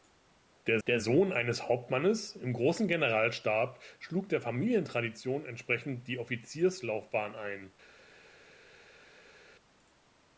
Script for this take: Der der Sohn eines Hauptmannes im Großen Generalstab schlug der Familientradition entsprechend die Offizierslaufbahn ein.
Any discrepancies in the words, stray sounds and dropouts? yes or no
no